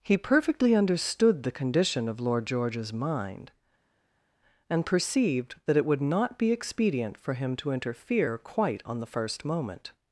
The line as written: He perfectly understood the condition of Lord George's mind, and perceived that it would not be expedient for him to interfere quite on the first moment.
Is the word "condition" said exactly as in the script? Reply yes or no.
yes